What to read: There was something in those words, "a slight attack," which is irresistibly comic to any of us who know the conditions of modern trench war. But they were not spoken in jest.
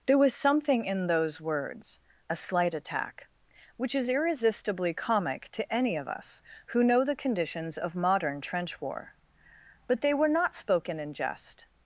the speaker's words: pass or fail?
pass